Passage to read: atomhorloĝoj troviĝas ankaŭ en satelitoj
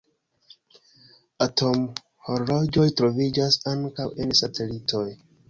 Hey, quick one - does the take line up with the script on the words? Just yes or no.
yes